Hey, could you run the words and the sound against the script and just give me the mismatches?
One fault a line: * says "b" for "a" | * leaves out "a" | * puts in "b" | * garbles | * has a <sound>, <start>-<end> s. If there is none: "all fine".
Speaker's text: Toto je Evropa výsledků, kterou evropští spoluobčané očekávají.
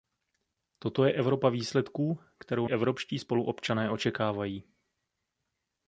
all fine